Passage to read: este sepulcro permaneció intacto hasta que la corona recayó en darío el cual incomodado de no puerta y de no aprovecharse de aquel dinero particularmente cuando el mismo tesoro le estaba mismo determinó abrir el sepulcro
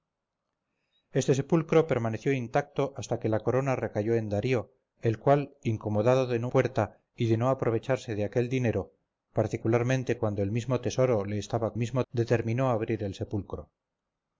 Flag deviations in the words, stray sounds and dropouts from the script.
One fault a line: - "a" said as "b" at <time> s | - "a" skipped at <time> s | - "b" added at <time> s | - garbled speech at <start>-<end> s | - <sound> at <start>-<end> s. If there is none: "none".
none